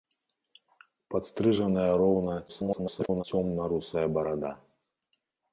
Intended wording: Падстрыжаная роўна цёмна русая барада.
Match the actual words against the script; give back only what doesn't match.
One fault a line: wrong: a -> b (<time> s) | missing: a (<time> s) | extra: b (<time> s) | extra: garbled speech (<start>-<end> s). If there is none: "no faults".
extra: garbled speech (2.5-3.2 s)